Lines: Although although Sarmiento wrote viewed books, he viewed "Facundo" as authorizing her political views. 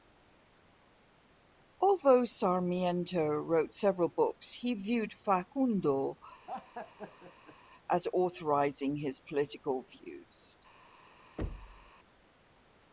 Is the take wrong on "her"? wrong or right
wrong